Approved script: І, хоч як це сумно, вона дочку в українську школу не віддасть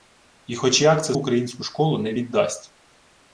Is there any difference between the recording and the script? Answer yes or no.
yes